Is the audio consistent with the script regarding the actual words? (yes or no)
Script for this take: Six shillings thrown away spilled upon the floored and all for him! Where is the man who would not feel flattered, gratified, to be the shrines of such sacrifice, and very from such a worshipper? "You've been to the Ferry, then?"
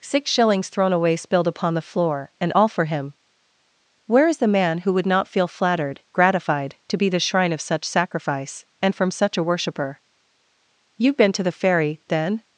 no